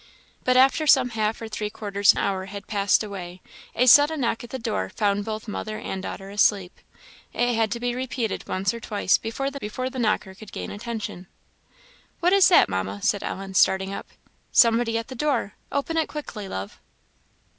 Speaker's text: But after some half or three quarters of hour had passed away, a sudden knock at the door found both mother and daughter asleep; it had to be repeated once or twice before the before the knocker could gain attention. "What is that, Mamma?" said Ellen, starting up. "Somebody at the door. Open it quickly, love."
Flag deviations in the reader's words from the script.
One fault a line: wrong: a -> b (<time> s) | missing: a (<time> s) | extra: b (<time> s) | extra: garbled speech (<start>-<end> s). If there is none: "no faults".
no faults